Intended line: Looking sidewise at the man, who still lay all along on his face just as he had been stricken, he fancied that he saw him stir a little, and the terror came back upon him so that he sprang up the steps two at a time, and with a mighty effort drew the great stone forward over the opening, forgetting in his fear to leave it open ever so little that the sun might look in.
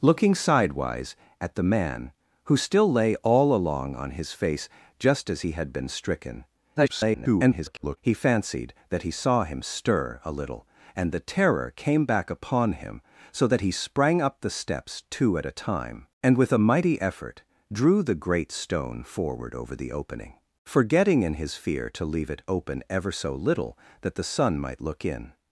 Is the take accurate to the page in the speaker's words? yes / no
no